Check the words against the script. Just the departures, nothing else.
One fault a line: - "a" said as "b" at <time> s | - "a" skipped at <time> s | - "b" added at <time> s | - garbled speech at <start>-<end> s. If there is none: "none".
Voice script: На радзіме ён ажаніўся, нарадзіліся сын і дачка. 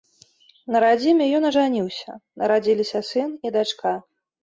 none